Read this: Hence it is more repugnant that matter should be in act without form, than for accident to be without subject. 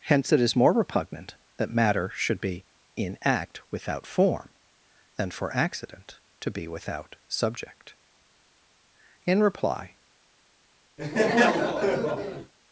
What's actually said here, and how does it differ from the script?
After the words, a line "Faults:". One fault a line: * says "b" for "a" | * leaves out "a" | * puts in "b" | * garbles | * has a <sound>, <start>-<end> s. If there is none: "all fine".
Hence it is more repugnant that matter should be in act without form, than for accident to be without subject. In reply
Faults:
* puts in "In reply"
* has a laugh, 11.0-12.5 s